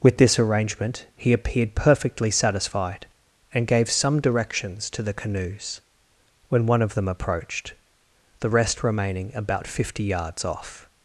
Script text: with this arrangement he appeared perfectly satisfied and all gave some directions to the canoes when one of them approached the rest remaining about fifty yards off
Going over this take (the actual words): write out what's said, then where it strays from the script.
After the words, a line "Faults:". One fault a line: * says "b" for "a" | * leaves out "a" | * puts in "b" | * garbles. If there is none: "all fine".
with this arrangement he appeared perfectly satisfied and gave some directions to the canoes when one of them approached the rest remaining about fifty yards off
Faults:
* leaves out "all"